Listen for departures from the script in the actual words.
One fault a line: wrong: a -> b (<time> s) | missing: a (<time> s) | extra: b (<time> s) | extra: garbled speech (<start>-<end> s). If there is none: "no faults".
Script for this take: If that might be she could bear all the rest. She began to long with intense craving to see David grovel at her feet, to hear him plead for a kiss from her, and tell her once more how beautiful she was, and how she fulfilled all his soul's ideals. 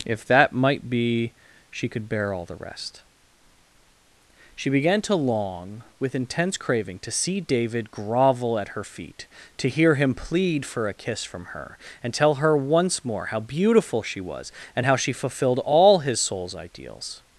no faults